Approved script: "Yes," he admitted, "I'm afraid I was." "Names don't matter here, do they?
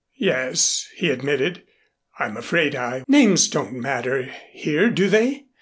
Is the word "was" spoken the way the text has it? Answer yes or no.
no